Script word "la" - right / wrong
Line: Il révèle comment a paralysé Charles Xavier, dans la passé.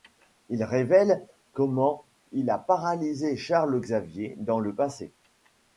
wrong